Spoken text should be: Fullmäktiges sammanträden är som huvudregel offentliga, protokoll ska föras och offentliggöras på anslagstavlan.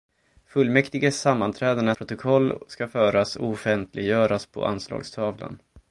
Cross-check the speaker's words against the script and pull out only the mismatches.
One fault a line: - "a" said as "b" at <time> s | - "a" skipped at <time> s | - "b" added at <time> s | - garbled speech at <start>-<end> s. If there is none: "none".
- "som huvudregel offentliga" skipped at 1.9 s